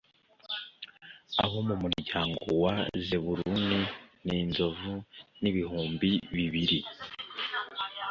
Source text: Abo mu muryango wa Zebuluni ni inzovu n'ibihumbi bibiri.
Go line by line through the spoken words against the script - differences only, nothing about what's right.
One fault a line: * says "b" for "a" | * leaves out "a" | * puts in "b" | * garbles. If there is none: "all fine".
all fine